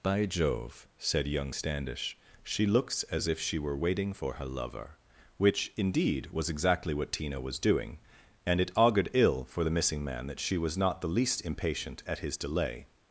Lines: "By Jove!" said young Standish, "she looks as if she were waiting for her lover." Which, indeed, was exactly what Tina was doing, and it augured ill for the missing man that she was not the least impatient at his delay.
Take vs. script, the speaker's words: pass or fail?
pass